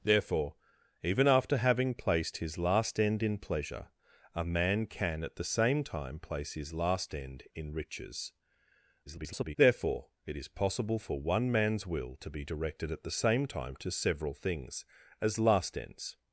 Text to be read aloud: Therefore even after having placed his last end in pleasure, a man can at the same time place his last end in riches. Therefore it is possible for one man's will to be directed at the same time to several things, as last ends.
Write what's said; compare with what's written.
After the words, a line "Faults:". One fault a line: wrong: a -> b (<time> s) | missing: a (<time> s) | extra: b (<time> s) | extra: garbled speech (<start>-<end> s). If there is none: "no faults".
Therefore even after having placed his last end in pleasure, a man can at the same time place his last end in riches. [garbled] Therefore it is possible for one man's will to be directed at the same time to several things, as last ends.
Faults:
extra: garbled speech (9.1-9.6 s)